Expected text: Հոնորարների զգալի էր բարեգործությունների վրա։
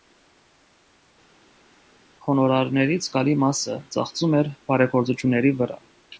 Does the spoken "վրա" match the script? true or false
true